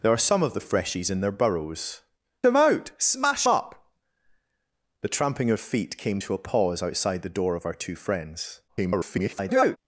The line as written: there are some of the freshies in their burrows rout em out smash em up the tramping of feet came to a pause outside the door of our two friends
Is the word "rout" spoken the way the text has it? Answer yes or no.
no